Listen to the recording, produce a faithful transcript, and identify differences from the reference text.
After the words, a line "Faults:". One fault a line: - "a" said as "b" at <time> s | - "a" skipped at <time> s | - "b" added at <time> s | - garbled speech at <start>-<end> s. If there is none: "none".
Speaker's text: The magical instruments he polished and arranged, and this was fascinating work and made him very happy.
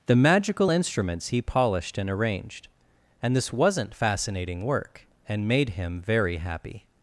The magical instruments he polished and arranged, and this wasn't fascinating work and made him very happy.
Faults:
- "was" said as "wasn't" at 3.5 s